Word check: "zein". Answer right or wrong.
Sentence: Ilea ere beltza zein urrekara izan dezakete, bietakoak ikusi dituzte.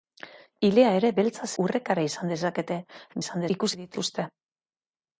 wrong